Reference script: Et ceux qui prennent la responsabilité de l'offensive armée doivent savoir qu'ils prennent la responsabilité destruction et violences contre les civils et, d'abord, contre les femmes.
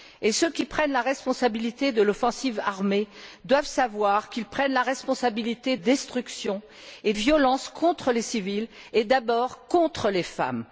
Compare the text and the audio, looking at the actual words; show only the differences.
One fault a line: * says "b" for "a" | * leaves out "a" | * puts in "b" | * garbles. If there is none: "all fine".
all fine